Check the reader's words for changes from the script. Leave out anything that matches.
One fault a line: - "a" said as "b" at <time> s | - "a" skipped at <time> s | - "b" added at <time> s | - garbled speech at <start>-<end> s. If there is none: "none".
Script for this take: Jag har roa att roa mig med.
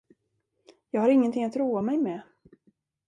- "roa" said as "ingenting" at 1.1 s